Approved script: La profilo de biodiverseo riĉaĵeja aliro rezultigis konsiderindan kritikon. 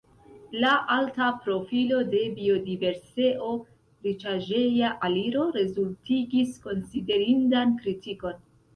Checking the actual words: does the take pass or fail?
fail